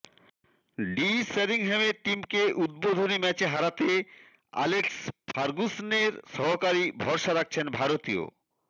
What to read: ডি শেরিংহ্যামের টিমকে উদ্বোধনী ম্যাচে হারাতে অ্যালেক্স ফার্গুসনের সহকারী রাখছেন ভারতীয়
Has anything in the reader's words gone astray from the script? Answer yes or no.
yes